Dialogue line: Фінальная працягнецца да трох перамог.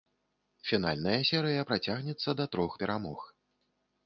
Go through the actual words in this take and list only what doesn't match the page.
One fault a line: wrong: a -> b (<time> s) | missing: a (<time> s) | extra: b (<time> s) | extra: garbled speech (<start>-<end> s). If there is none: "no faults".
extra: серыя (1.3 s)